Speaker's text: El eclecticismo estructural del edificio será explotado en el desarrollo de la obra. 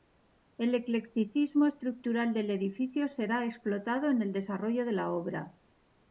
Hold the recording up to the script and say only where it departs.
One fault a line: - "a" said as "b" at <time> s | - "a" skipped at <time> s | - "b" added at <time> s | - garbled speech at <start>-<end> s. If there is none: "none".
none